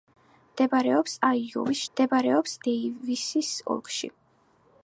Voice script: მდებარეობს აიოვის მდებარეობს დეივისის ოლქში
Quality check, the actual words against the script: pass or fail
pass